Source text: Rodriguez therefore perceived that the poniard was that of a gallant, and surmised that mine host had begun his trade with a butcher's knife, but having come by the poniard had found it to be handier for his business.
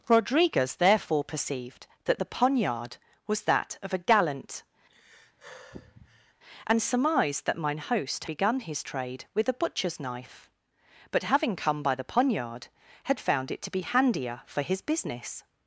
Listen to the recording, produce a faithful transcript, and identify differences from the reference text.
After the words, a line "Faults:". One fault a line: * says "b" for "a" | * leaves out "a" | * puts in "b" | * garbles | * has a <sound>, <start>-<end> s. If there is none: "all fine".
Rodriguez therefore perceived that the poniard was that of a gallant, and surmised that mine host begun his trade with a butcher's knife, but having come by the poniard had found it to be handier for his business.
Faults:
* has a sigh, 4.9-6.3 s
* leaves out "had"